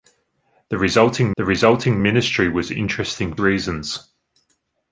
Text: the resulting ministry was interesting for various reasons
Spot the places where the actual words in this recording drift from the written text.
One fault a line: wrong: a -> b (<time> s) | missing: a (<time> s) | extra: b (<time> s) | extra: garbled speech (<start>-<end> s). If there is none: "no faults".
extra: the resulting (1.4 s)
missing: for various (3.4 s)